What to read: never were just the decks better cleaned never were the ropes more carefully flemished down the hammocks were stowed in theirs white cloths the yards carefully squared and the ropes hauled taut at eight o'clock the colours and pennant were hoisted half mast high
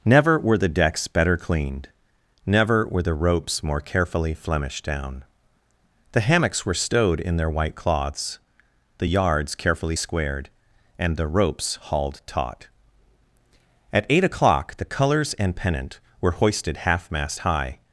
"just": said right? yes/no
no